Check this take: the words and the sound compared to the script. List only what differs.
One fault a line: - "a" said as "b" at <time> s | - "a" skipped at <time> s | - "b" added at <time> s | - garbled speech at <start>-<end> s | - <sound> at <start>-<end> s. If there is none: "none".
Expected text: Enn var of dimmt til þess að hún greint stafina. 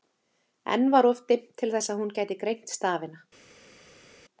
- "gæti" added at 2.2 s